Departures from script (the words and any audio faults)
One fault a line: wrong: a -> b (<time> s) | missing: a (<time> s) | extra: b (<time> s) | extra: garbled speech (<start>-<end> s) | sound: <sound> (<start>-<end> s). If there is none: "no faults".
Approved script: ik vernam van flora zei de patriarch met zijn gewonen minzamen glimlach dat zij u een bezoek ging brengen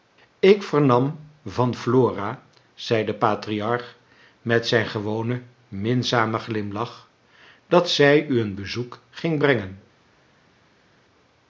no faults